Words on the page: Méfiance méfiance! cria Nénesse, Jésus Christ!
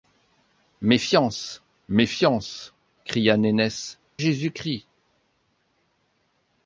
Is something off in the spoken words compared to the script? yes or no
no